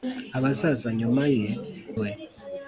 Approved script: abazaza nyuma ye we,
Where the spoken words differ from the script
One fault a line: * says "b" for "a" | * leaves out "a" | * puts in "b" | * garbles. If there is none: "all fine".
all fine